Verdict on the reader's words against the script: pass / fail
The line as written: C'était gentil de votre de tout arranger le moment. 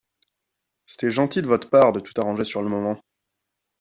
fail